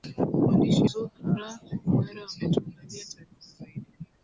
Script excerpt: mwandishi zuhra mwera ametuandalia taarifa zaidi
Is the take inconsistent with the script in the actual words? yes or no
no